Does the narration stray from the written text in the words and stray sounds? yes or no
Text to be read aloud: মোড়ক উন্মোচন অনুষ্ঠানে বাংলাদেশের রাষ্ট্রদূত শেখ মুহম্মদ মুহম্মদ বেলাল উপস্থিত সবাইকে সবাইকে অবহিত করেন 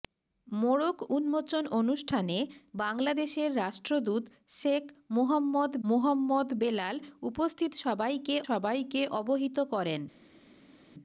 no